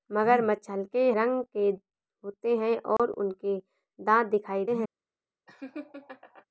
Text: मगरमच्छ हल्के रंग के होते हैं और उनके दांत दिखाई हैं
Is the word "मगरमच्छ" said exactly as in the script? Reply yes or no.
yes